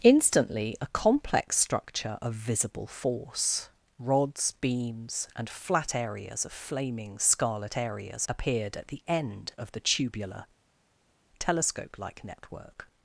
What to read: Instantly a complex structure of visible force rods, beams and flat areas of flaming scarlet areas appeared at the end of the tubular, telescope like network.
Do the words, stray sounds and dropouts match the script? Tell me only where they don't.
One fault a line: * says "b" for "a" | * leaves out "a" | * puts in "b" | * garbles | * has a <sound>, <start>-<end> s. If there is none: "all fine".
all fine